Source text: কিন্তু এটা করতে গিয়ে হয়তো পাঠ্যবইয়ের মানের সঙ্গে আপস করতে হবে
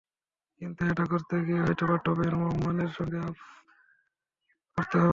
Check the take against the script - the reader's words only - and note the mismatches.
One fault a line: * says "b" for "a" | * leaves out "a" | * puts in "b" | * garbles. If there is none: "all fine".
all fine